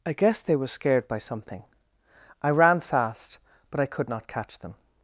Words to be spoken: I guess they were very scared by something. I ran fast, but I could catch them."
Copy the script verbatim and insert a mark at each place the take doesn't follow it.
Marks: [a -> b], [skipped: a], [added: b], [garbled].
I guess they were [skipped: very] scared by something. I ran fast, but I could [added: not] catch them."